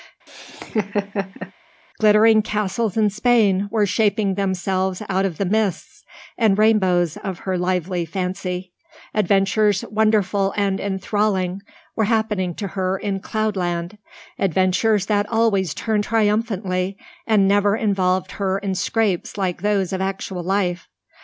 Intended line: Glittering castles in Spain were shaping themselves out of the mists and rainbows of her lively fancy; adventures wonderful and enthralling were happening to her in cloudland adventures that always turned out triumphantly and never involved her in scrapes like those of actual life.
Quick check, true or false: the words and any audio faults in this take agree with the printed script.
false